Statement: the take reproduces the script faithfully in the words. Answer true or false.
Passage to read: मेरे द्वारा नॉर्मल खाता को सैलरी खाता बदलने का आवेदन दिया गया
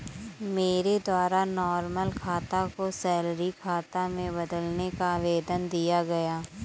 false